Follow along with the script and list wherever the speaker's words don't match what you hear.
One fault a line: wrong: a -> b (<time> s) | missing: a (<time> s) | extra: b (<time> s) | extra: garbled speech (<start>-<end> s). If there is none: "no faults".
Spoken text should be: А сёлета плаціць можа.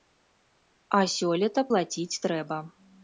wrong: можа -> трэба (2.3 s)